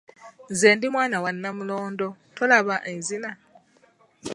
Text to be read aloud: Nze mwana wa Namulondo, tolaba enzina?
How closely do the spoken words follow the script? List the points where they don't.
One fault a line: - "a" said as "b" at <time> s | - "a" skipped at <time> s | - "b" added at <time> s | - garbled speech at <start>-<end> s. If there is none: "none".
- "ndi" added at 0.8 s